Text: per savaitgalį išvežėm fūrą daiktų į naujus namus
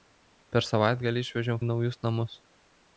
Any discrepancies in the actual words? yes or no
yes